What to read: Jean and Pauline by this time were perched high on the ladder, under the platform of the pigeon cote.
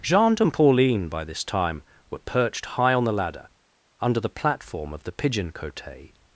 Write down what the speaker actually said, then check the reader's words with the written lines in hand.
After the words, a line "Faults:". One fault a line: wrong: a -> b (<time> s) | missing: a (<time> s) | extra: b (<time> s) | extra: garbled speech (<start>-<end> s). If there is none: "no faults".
Jean and Pauline by this time were perched high on the ladder, under the platform of the pigeon cote.
Faults:
no faults